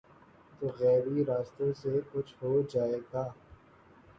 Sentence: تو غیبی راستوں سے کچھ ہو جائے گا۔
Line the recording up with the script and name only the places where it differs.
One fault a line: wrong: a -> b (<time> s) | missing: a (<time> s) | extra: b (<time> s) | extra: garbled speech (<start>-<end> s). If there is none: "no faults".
no faults